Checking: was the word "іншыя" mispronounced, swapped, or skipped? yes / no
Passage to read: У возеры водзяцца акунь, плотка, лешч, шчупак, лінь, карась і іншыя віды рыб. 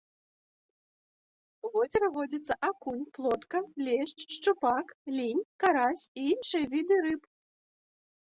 no